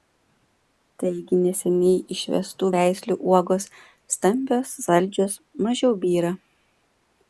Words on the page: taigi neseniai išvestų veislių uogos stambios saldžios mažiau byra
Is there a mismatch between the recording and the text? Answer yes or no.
no